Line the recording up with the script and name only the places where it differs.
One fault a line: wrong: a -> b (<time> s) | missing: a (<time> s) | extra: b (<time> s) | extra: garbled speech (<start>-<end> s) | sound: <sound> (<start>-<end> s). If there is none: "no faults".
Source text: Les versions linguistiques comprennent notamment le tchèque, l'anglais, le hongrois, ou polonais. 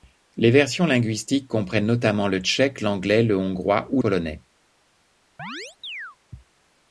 sound: chirp (5.4-6.2 s)